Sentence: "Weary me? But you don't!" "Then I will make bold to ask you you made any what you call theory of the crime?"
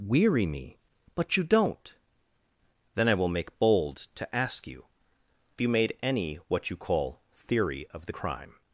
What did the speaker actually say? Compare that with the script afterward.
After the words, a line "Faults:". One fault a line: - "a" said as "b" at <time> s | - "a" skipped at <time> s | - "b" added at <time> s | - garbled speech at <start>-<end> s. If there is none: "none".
"Weary me? But you don't!" "Then I will make bold to ask you you made any what you call theory of the crime?"
Faults:
none